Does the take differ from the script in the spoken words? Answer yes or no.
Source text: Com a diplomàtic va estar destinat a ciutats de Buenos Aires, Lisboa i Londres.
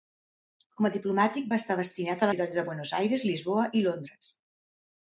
no